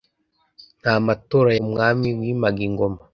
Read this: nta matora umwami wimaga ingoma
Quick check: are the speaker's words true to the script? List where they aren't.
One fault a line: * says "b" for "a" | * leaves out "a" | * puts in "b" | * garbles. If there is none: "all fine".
all fine